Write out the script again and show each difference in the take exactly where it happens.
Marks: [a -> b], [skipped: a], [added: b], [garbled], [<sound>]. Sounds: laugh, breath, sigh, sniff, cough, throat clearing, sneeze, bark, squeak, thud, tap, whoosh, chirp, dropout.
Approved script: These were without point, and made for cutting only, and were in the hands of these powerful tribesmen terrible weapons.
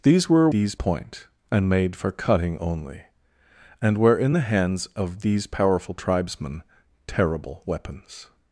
These were [without -> these] point, and made for cutting only, and were in the hands of these powerful tribesmen terrible weapons.